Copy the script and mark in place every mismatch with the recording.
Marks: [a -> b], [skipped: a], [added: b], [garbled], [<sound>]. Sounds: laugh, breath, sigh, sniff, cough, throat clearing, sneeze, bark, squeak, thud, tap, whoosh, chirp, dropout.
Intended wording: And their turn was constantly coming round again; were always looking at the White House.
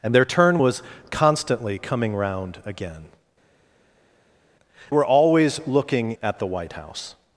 And their turn was constantly coming round again; were always looking at the White House.